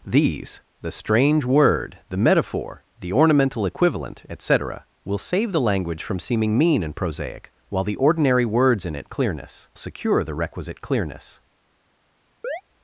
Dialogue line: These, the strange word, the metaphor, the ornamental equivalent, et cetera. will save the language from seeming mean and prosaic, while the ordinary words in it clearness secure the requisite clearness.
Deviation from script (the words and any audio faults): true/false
true